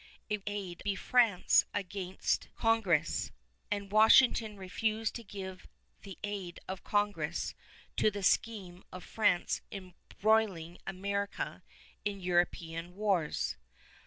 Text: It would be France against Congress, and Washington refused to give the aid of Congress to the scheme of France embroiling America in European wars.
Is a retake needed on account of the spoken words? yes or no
yes